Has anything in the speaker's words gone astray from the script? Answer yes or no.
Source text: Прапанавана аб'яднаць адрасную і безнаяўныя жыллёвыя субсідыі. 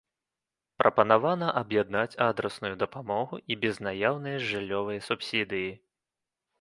yes